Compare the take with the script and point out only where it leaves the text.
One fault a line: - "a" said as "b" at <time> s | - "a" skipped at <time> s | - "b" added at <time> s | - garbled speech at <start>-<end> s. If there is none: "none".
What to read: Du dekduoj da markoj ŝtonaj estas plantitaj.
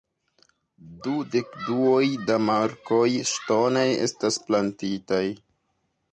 none